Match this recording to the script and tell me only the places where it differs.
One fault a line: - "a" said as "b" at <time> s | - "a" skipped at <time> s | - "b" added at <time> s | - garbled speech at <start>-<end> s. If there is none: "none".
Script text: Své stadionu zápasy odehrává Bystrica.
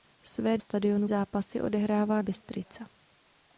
none